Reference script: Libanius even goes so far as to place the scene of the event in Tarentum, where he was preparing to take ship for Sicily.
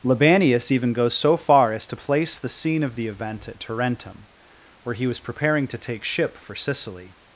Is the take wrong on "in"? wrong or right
wrong